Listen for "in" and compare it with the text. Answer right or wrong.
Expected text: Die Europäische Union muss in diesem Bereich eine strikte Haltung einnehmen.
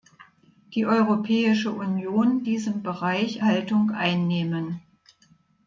wrong